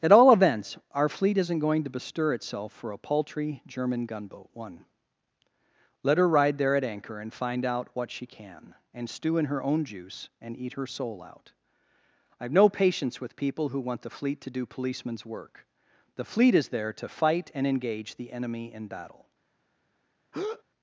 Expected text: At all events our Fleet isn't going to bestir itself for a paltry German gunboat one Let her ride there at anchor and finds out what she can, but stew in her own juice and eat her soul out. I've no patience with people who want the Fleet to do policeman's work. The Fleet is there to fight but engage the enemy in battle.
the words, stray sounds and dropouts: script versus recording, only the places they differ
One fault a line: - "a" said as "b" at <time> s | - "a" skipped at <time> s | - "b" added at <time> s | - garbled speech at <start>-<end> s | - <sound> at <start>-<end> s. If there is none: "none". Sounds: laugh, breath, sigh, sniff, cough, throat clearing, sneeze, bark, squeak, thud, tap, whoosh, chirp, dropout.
- "finds" said as "find" at 7.3 s
- "but" said as "and" at 8.9 s
- "but" said as "and" at 17.5 s
- breath at 20.3-20.6 s